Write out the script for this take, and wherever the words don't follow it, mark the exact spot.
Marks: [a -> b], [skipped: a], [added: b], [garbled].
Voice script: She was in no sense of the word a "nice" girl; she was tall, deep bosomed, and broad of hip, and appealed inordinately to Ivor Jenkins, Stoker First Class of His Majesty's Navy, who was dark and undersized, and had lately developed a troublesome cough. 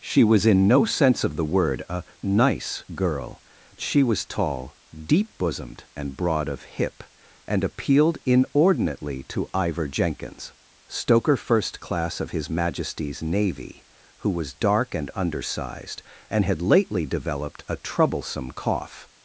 She was in no sense of the word a "nice" girl; she was tall, deep bosomed, and broad of hip, and appealed inordinately to Ivor Jenkins, Stoker First Class of His Majesty's Navy, who was dark and undersized, and had lately developed a troublesome cough.